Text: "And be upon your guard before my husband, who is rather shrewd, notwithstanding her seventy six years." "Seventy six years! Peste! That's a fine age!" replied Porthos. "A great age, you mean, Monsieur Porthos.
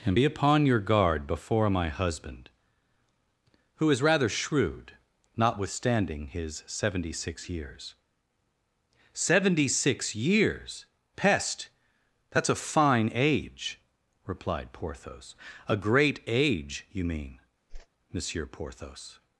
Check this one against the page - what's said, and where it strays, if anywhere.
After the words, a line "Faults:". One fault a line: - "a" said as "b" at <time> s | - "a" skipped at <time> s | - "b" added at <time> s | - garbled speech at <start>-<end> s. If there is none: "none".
"And be upon your guard before my husband, who is rather shrewd, notwithstanding his seventy six years." "Seventy six years! Peste! That's a fine age!" replied Porthos. "A great age, you mean, Monsieur Porthos.
Faults:
- "her" said as "his" at 6.3 s